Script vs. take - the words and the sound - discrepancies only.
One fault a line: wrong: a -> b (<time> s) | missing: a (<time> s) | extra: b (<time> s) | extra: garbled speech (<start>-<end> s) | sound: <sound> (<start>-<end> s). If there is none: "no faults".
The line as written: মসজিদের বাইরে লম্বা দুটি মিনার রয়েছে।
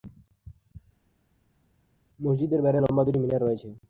no faults